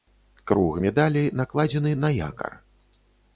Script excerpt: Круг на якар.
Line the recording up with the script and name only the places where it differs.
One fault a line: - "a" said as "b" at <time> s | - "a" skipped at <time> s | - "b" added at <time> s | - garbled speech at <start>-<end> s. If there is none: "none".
- "медалі накладзены" added at 0.8 s